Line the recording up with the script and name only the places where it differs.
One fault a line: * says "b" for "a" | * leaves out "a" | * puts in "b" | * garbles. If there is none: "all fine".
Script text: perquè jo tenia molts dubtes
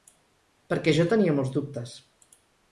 all fine